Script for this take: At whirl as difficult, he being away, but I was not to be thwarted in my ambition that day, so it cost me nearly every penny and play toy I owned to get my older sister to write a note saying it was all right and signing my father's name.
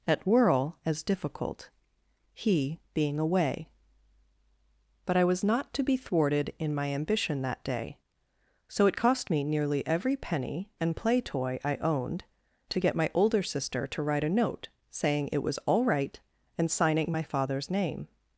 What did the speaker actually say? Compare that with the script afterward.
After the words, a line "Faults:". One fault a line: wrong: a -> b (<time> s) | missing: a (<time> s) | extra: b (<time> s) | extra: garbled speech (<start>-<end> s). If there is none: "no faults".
At whirl as difficult, he being away, but I was not to be thwarted in my ambition that day, so it cost me nearly every penny and play toy I owned to get my older sister to write a note saying it was all right and signing my father's name.
Faults:
no faults